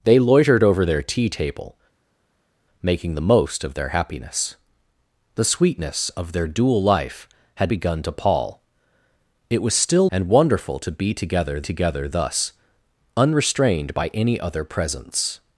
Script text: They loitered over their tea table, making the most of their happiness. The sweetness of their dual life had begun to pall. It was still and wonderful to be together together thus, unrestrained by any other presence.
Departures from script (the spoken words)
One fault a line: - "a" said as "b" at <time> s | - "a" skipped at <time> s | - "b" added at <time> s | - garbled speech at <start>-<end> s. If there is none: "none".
none